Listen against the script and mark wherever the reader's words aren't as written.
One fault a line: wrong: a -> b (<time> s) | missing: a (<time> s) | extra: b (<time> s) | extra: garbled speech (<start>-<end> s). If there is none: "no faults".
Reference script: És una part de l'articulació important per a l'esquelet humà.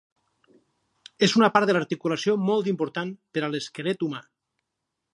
extra: molt (2.5 s)